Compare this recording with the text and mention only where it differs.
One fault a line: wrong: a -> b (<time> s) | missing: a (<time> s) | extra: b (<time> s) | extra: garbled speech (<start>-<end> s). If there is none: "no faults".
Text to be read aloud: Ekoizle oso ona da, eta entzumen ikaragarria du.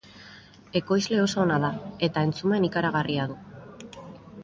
no faults